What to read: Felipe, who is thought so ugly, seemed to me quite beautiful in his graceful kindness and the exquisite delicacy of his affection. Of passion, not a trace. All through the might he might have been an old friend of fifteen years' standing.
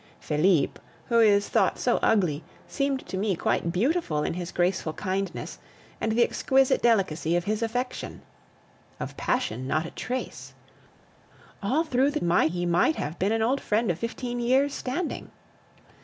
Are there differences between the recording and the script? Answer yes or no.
no